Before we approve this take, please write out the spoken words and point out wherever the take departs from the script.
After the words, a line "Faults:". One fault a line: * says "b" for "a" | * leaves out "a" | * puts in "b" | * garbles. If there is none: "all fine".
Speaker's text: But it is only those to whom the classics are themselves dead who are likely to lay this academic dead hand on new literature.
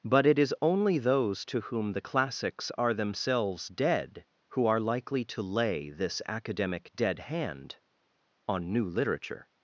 But it is only those to whom the classics are themselves dead who are likely to lay this academic dead hand on new literature.
Faults:
all fine